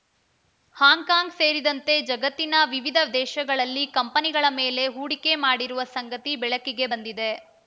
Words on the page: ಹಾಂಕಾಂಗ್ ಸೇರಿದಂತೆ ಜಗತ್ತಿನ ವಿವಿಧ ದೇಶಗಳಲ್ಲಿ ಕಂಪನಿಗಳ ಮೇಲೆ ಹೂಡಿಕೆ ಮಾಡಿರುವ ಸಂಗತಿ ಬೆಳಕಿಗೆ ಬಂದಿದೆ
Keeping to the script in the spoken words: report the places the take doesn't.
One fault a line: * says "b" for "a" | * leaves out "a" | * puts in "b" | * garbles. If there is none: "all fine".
all fine